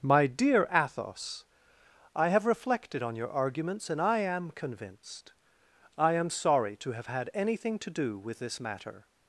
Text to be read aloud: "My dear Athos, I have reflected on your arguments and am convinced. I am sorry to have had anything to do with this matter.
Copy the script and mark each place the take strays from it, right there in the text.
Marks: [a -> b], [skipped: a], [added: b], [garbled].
"My dear Athos, I have reflected on your arguments and [added: I] am convinced. I am sorry to have had anything to do with this matter.